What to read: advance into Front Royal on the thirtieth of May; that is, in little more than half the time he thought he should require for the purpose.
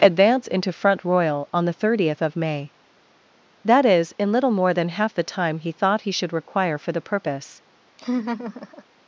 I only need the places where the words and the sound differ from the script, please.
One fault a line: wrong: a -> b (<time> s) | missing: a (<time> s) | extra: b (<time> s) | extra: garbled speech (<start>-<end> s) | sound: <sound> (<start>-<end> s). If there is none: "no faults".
sound: laugh (8.0-8.8 s)